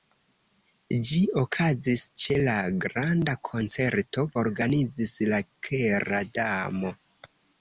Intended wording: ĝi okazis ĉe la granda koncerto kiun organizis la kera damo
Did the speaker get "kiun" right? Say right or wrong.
wrong